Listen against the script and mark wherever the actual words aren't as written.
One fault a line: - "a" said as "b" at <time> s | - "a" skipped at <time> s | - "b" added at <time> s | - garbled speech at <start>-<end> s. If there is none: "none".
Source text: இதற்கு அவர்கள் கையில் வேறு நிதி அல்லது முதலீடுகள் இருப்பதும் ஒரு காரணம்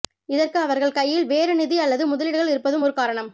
none